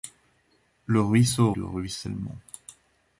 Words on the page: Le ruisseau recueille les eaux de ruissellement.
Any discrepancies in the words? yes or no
yes